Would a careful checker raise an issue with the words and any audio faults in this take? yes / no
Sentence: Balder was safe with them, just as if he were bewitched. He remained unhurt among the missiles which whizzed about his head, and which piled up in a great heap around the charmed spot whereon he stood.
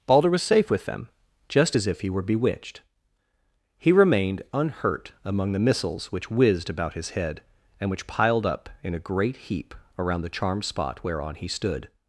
no